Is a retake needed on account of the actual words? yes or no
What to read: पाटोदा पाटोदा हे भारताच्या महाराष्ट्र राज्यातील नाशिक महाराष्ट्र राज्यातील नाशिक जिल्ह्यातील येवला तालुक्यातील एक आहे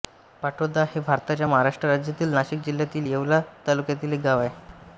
yes